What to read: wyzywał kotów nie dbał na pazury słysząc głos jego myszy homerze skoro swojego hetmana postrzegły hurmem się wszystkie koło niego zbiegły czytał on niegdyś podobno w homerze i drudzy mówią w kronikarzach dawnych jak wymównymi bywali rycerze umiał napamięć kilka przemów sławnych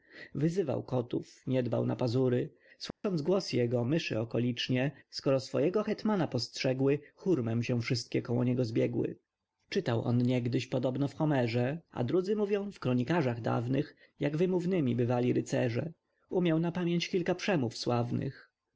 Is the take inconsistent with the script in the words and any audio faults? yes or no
yes